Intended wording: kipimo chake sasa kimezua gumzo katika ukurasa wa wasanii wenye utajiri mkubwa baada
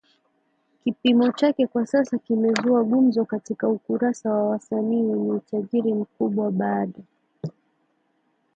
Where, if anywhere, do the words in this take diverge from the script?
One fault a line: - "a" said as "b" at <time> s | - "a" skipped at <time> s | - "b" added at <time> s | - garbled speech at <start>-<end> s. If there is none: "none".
- "kwa" added at 1.7 s